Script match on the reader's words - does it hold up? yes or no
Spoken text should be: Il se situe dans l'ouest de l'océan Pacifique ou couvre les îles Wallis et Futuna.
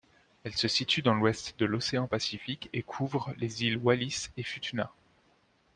no